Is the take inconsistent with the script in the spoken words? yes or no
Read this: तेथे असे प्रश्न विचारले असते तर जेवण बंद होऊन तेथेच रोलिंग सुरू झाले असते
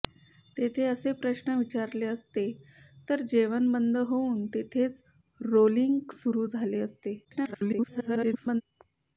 yes